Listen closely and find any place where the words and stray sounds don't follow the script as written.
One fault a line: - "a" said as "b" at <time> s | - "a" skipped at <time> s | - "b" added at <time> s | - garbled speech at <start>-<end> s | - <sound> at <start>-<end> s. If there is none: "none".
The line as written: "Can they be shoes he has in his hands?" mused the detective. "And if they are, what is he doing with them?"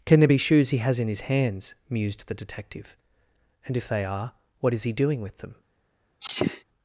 - "they" said as "there" at 0.2 s
- sneeze at 6.2-6.6 s